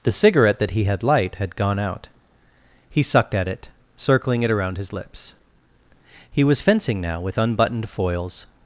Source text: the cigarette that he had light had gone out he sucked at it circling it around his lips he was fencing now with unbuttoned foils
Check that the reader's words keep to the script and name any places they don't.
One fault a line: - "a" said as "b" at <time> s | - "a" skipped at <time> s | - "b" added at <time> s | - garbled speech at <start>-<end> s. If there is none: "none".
none